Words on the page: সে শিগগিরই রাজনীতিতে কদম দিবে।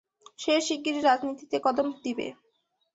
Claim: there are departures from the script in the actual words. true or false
false